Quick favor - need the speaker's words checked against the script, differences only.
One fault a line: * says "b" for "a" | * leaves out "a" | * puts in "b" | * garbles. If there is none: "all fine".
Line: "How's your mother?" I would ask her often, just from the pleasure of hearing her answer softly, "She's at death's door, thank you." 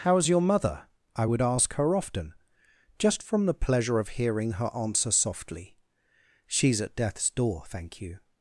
all fine